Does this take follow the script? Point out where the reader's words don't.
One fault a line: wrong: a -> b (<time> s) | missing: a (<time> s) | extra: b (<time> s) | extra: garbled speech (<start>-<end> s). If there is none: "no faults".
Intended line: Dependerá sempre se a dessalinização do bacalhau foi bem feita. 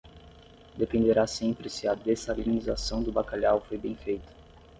no faults